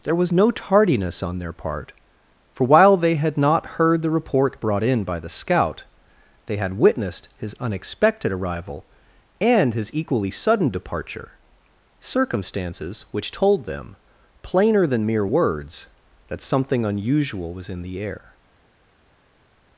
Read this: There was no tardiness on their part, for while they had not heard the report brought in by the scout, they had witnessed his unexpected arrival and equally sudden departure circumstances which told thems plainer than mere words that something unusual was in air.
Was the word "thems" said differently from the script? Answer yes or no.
yes